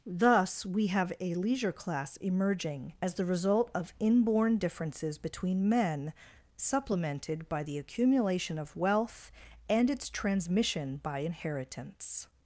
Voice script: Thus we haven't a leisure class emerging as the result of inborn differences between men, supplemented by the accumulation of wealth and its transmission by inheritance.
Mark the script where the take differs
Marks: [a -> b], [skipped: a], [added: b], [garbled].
Thus we [haven't -> have] a leisure class emerging as the result of inborn differences between men, supplemented by the accumulation of wealth and its transmission by inheritance.